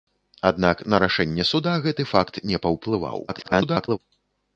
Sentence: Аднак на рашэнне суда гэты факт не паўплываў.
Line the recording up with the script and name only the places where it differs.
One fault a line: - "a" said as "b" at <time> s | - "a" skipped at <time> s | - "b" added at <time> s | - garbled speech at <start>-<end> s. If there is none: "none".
- garbled speech at 3.3-4.0 s